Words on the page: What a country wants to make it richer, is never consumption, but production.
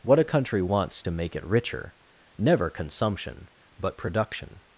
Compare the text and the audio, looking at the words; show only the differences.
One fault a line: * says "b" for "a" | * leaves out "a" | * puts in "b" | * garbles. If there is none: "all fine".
* leaves out "is"